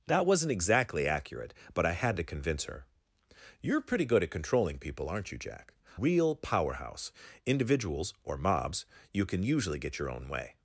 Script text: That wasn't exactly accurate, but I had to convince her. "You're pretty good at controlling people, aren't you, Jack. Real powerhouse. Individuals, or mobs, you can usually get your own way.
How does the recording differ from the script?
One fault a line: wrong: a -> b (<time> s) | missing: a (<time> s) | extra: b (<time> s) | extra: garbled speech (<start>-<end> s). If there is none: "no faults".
no faults